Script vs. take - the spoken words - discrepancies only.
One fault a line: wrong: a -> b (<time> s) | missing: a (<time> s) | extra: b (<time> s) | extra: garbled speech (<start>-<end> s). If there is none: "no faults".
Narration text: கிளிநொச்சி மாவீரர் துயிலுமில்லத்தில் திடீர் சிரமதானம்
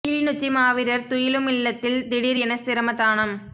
extra: என (2.4 s)